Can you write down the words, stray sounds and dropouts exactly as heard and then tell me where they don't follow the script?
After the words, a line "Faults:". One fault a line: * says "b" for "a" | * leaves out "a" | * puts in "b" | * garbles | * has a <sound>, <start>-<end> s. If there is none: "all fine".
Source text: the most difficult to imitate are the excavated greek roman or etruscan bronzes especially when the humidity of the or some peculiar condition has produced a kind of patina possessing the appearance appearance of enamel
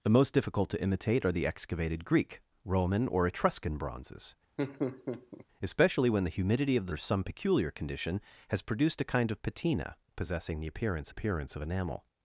the most difficult to imitate are the excavated greek roman or etruscan bronzes especially when the humidity of the or some peculiar condition has produced a kind of patina possessing the appearance appearance of enamel
Faults:
* has a laugh, 4.6-5.5 s